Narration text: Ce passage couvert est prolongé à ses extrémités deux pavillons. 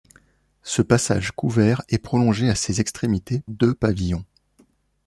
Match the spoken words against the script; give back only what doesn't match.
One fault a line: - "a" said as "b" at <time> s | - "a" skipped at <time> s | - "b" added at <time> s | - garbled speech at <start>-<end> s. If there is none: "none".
none